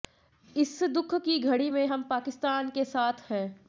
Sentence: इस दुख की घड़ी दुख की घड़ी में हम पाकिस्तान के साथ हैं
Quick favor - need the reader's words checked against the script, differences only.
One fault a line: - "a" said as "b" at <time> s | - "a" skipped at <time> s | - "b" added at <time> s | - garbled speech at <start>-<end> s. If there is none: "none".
- "दुख की घड़ी" skipped at 1.7 s